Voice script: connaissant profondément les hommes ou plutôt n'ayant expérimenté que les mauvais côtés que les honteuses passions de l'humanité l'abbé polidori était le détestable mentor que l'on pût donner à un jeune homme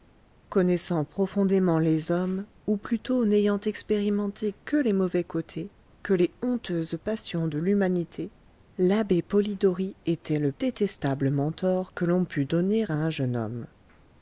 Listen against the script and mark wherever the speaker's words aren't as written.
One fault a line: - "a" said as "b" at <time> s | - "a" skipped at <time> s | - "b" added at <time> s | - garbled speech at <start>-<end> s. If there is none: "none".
none